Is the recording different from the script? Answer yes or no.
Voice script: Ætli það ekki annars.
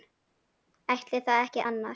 no